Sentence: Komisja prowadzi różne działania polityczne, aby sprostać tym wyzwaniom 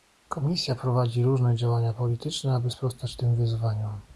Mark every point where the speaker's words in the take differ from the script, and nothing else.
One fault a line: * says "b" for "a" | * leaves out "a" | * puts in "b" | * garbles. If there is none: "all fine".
all fine